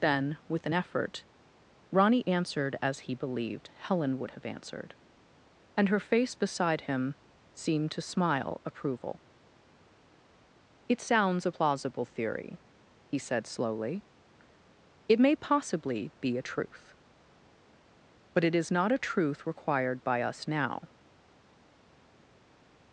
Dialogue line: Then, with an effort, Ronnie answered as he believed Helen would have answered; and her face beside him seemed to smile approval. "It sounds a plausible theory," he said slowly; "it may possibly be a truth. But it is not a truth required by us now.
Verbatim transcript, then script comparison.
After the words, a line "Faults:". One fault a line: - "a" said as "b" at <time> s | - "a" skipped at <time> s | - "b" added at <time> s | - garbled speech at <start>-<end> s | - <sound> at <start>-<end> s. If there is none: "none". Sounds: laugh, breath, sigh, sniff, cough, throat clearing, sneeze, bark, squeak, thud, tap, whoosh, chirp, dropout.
Then, with an effort, Ronnie answered as he believed Helen would have answered; and her face beside him seemed to smile approval. "It sounds a plausible theory," he said slowly; "it may possibly be a truth. But it is not a truth required by us now.
Faults:
none